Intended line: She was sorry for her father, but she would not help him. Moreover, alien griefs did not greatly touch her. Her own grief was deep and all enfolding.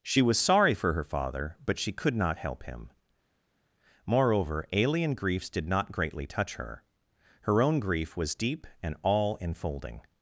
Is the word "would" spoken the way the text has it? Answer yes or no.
no